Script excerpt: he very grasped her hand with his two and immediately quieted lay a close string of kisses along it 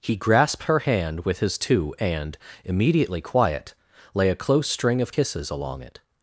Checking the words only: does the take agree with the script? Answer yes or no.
no